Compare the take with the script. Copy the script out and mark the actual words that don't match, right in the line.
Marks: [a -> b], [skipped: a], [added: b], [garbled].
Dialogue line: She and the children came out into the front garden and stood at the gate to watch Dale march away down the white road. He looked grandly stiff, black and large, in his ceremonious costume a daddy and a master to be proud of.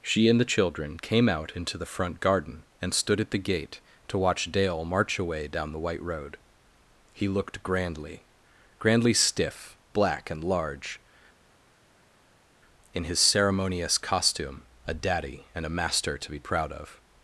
She and the children came out into the front garden and stood at the gate to watch Dale march away down the white road. He looked grandly [added: grandly] stiff, black and large, in his ceremonious costume a daddy and a master to be proud of.